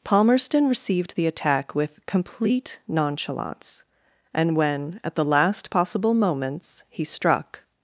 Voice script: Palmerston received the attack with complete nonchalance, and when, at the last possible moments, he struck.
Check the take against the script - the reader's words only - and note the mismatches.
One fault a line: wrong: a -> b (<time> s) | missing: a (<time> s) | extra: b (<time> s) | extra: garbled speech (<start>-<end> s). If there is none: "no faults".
no faults